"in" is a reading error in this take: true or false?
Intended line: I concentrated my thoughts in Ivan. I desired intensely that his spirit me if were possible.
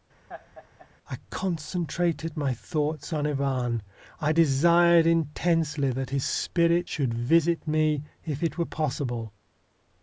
true